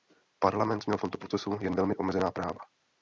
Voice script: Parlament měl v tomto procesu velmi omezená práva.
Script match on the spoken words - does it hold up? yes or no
no